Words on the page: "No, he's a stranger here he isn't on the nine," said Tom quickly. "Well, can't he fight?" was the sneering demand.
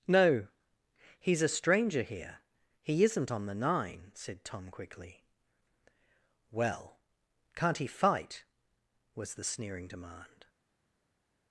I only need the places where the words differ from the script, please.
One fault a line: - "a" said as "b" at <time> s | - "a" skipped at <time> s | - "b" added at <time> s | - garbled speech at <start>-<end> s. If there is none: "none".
none